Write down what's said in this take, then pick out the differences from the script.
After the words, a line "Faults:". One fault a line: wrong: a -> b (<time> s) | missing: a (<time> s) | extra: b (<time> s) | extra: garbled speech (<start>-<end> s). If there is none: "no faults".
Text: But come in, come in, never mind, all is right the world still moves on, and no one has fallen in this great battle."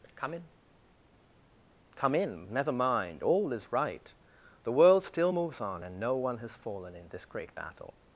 But come in, come in, never mind, all is right the world still moves on, and no one has fallen in this great battle."
Faults:
no faults